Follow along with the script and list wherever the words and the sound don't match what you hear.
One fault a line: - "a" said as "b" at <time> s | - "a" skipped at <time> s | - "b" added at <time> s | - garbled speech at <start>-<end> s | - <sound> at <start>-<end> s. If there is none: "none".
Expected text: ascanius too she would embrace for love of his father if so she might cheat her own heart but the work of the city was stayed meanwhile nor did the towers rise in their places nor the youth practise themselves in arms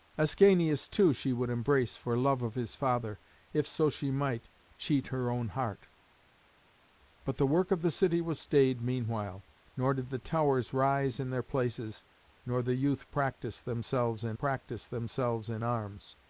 - "practise themselves in" added at 14.4 s